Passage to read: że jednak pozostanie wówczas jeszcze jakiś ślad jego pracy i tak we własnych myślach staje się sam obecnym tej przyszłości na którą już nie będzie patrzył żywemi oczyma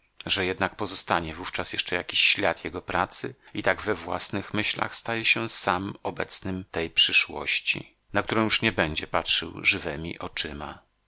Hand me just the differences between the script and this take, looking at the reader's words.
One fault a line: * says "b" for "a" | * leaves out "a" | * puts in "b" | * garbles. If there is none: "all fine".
all fine